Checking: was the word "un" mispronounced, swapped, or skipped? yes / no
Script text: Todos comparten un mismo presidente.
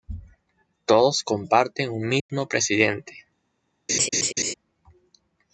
no